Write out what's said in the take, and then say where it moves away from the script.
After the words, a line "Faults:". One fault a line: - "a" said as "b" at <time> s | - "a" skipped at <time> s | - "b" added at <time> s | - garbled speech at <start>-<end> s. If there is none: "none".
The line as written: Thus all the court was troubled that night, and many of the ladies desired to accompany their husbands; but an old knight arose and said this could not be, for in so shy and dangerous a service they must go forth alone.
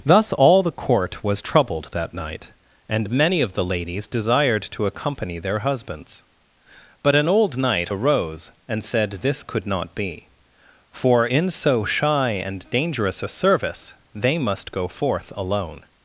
Thus all the court was troubled that night, and many of the ladies desired to accompany their husbands; but an old knight arose and said this could not be, for in so shy and dangerous a service they must go forth alone.
Faults:
none